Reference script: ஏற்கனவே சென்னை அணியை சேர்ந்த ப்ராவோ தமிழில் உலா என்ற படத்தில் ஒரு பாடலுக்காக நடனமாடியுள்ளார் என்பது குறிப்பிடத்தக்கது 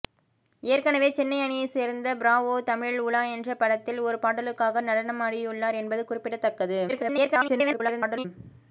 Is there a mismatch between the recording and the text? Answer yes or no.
yes